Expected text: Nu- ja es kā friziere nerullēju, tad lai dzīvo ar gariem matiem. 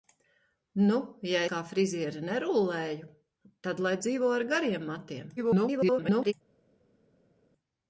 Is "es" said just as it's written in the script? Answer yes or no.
no